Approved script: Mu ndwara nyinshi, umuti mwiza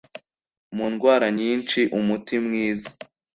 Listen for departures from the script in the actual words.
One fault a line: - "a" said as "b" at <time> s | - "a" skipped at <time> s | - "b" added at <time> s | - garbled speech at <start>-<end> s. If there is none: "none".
none